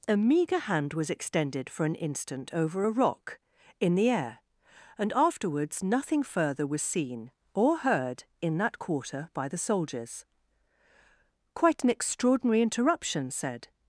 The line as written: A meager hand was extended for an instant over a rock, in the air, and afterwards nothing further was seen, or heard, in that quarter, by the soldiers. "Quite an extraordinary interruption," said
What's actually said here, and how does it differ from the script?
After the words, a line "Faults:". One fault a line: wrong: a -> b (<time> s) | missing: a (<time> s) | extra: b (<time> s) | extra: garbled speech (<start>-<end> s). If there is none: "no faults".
A meager hand was extended for an instant over a rock, in the air, and afterwards nothing further was seen, or heard, in that quarter, by the soldiers. "Quite an extraordinary interruption," said
Faults:
no faults